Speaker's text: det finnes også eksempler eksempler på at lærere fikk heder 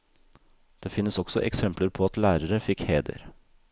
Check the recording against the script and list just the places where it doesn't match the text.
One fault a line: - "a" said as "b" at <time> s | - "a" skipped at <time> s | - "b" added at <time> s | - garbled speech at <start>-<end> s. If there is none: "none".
- "eksempler" skipped at 1.9 s